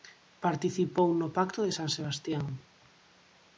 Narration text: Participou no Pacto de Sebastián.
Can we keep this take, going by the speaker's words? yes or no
no